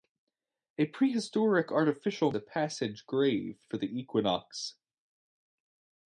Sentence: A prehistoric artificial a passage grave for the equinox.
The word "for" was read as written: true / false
true